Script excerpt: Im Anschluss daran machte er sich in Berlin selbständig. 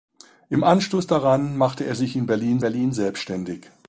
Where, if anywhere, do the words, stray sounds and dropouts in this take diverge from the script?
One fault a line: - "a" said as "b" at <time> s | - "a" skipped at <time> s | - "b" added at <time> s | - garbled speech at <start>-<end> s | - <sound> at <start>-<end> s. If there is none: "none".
- "Berlin" added at 2.6 s